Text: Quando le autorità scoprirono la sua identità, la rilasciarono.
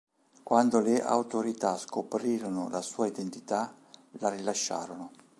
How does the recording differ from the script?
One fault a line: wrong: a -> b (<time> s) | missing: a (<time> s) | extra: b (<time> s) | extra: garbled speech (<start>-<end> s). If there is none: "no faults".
no faults